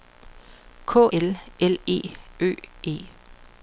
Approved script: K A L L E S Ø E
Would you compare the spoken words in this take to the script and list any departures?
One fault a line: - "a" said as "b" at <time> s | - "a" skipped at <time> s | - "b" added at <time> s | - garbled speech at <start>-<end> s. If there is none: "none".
- "A" skipped at 1.1 s
- "S" skipped at 2.0 s